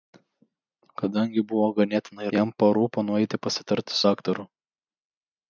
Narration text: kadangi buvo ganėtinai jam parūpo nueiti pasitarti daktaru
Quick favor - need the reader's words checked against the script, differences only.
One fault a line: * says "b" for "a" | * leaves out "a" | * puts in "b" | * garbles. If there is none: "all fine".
all fine